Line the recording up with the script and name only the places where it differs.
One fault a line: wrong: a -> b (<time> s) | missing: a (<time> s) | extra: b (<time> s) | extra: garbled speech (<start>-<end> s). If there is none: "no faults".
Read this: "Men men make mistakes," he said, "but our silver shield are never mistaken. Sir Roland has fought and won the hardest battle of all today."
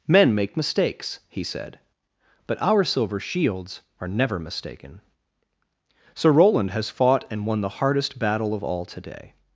missing: men (0.3 s)
wrong: shield -> shields (3.2 s)